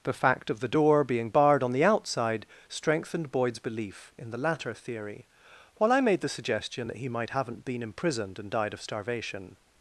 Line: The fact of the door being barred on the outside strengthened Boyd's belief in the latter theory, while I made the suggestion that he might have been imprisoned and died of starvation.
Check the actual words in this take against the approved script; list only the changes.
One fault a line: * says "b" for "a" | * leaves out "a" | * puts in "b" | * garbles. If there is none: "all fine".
* says "haven't" for "have"